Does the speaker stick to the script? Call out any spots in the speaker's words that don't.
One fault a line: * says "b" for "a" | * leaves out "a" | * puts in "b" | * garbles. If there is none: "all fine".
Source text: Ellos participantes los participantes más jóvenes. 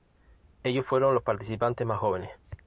* says "fueron" for "participantes"